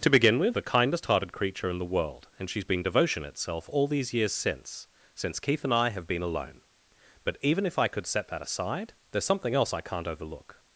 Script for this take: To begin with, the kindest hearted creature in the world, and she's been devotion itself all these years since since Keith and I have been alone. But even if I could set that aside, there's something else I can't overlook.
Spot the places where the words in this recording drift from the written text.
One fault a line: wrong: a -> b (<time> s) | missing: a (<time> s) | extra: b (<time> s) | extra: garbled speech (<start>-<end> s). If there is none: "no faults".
no faults